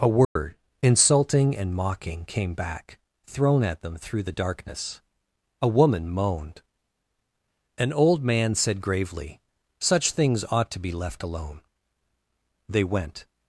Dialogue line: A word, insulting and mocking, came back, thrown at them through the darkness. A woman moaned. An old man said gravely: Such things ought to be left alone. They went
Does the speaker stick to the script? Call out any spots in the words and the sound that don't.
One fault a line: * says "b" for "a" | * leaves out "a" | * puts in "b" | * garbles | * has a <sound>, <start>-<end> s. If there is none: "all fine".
* has a dropout, 0.2-0.4 s